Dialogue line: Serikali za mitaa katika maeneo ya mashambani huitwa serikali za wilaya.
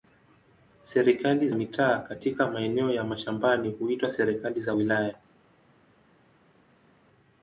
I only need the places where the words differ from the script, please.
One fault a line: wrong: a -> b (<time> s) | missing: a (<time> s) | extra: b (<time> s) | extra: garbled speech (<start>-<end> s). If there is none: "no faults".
missing: za (1.5 s)